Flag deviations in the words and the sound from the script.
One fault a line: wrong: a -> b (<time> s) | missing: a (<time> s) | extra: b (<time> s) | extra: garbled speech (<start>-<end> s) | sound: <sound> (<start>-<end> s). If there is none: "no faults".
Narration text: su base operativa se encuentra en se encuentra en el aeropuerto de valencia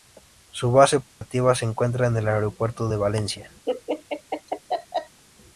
sound: dropout (1.1-1.2 s)
missing: se encuentra en (2.2 s)
sound: laugh (3.7-5.2 s)